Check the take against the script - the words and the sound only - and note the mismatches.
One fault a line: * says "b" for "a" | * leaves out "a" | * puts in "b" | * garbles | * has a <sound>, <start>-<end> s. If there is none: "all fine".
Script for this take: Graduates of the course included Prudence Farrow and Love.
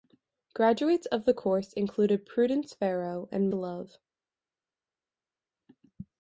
all fine